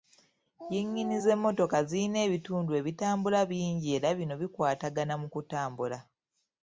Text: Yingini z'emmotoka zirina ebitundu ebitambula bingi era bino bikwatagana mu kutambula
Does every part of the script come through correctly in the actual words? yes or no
yes